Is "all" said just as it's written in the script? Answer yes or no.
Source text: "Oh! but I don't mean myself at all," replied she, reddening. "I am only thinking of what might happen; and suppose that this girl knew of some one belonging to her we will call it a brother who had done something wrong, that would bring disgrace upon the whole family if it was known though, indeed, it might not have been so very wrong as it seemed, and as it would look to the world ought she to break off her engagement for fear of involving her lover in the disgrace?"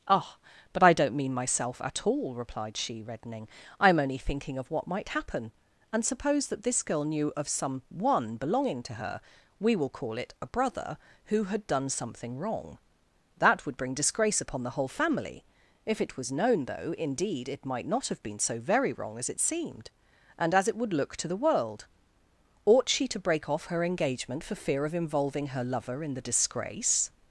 yes